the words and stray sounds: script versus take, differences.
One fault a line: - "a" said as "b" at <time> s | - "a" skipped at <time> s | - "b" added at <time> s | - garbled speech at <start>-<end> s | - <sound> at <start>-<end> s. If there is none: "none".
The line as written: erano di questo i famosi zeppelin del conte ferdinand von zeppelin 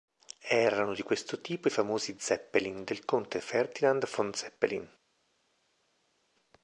- "tipo" added at 1.4 s